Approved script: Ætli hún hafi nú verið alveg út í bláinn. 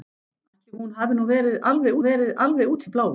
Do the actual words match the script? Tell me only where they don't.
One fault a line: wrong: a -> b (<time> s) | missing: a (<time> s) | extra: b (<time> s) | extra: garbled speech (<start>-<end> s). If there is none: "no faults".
extra: verið alveg (2.1 s)